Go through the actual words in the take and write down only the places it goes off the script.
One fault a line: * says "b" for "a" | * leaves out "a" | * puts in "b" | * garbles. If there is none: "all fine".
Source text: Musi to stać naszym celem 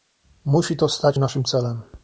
all fine